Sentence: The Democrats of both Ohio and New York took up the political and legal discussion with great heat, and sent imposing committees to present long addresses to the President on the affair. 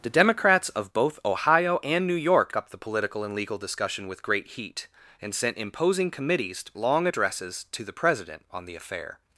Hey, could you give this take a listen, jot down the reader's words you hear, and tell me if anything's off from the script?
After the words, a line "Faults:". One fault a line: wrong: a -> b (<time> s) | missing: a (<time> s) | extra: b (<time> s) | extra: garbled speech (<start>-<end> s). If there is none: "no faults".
The Democrats of both Ohio and New York up the political and legal discussion with great heat, and sent imposing committees long addresses to the President on the affair.
Faults:
missing: took (2.5 s)
missing: to present (6.6 s)